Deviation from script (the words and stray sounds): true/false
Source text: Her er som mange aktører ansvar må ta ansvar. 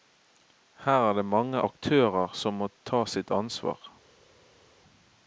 true